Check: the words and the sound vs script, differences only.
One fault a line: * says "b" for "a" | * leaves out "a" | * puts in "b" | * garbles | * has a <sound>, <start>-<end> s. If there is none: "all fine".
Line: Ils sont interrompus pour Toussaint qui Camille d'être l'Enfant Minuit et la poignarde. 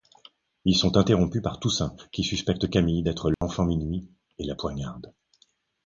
* says "par" for "pour"
* puts in "suspecte"
* has a dropout, 3.3-3.4 s